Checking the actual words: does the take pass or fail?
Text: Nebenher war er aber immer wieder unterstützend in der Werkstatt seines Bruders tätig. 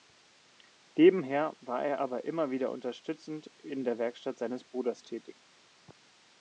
pass